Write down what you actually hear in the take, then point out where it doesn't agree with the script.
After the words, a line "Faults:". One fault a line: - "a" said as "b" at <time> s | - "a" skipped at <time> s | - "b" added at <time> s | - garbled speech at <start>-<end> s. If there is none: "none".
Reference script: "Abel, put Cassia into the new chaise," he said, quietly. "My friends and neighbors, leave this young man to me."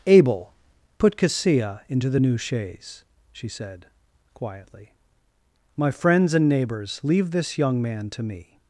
"Abel, put Cassia into the new chaise," she said, quietly. "My friends and neighbors, leave this young man to me."
Faults:
- "he" said as "she" at 3.3 s